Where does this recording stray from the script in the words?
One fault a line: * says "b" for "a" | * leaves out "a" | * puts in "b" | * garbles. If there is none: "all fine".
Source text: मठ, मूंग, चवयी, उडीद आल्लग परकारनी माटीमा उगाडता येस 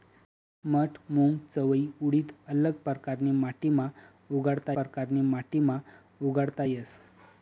* puts in "परकारनी माटीमा उगाडता"